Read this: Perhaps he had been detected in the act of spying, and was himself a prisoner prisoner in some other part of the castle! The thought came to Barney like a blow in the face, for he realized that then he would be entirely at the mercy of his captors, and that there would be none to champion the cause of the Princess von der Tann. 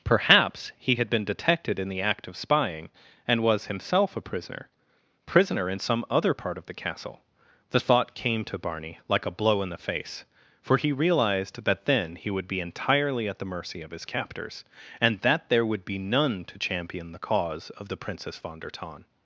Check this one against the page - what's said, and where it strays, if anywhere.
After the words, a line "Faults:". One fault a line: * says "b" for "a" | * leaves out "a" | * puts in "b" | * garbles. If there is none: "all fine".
Perhaps he had been detected in the act of spying, and was himself a prisoner prisoner in some other part of the castle! The thought came to Barney like a blow in the face, for he realized that then he would be entirely at the mercy of his captors, and that there would be none to champion the cause of the Princess von der Tann.
Faults:
all fine